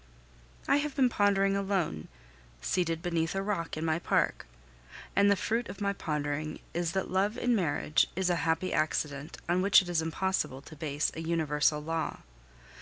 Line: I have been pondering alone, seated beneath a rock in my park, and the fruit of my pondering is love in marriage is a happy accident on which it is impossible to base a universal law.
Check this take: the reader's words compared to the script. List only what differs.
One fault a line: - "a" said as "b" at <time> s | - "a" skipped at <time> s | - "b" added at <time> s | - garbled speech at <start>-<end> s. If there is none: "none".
- "that" added at 6.9 s